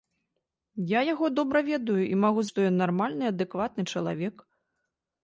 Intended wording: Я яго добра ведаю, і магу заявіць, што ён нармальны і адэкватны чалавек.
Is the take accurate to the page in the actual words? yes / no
no